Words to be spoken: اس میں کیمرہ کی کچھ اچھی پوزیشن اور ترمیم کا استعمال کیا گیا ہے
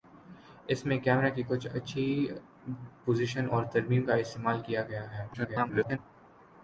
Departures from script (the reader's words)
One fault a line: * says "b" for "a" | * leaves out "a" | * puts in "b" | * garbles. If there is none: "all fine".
* garbles